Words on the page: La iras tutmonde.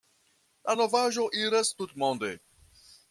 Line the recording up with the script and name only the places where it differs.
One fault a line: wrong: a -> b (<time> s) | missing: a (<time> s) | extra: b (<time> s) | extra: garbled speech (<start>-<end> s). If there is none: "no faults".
extra: novaĵo (0.8 s)